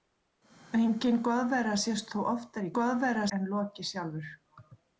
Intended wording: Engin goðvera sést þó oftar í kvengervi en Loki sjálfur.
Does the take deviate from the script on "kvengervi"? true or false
true